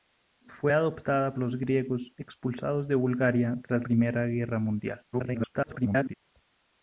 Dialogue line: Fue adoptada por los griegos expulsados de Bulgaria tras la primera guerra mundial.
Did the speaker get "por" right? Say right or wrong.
wrong